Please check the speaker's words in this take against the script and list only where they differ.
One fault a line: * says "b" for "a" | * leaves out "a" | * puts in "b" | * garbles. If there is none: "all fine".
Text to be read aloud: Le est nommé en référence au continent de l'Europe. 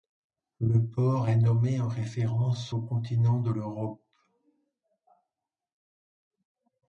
* puts in "port"